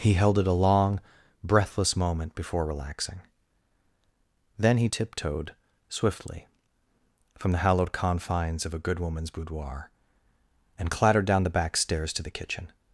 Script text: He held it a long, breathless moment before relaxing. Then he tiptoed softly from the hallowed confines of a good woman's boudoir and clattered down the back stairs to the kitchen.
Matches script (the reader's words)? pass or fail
fail